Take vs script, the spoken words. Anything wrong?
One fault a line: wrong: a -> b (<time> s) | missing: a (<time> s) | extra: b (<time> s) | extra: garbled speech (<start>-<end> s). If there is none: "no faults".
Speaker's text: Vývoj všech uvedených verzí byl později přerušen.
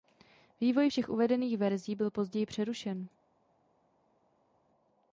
no faults